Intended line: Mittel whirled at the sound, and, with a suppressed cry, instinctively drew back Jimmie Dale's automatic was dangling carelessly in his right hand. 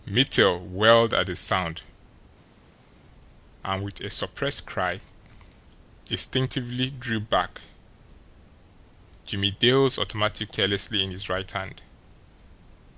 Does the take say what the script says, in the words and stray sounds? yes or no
no